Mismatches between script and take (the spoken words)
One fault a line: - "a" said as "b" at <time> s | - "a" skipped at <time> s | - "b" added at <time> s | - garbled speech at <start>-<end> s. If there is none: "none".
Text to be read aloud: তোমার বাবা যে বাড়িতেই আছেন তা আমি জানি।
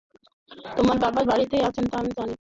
- "যে" skipped at 1.2 s